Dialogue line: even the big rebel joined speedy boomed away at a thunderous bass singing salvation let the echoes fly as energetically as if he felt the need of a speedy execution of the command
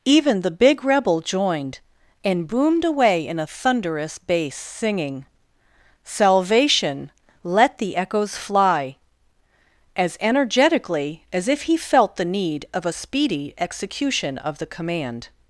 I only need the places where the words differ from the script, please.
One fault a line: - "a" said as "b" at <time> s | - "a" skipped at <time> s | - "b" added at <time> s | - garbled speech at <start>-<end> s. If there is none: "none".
- "speedy" said as "and" at 2.2 s
- "at" said as "in" at 3.3 s